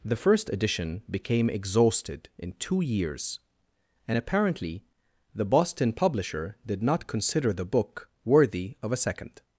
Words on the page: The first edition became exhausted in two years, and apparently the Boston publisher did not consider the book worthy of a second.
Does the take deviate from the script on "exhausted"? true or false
false